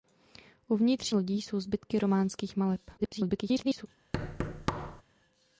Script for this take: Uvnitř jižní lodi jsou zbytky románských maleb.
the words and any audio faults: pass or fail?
fail